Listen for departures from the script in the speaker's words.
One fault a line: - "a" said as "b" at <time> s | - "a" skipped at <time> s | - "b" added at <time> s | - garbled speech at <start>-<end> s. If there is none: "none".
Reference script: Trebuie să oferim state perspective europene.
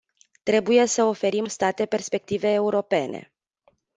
none